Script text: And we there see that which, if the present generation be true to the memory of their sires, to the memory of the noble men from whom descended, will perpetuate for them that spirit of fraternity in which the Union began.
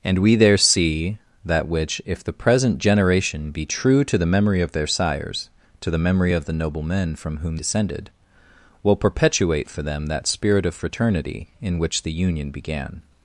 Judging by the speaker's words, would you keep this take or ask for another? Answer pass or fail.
pass